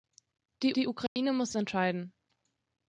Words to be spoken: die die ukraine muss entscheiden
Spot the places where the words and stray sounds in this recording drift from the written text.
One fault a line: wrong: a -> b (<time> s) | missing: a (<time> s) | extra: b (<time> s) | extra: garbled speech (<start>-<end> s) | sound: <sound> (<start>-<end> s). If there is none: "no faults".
sound: dropout (1.1-1.2 s)